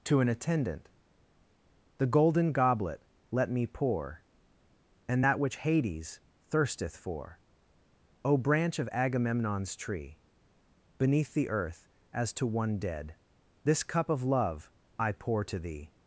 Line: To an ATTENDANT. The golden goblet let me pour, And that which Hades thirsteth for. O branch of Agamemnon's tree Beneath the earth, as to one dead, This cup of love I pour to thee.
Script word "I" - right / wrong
right